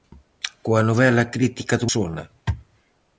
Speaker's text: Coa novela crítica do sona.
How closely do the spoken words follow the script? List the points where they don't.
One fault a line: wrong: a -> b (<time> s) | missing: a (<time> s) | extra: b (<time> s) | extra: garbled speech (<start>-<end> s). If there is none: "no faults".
no faults